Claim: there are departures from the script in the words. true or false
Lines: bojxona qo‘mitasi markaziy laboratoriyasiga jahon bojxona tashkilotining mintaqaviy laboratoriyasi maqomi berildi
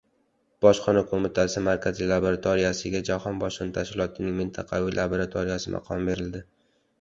false